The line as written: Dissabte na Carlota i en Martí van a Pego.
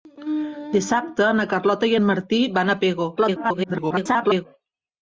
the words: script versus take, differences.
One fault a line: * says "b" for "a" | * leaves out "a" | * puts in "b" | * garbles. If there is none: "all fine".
* garbles